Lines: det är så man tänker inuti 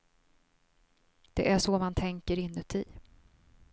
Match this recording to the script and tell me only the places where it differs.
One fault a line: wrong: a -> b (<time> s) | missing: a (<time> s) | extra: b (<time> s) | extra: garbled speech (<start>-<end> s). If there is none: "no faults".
no faults